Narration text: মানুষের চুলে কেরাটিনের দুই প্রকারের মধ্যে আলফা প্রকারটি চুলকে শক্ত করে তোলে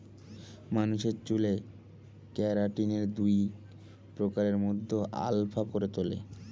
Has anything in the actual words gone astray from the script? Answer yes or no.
yes